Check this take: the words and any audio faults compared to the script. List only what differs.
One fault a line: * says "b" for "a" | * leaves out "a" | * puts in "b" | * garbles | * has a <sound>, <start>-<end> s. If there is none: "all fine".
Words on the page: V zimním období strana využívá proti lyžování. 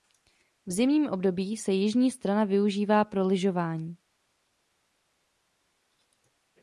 * puts in "se jižní"
* says "pro" for "proti"